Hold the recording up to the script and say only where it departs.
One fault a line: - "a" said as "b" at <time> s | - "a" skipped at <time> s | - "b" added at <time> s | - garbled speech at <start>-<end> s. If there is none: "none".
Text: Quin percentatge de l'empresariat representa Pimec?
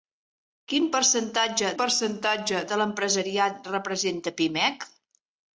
- "percentatge" added at 1.8 s